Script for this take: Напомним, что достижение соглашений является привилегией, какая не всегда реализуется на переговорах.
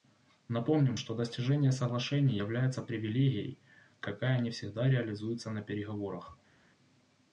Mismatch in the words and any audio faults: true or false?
false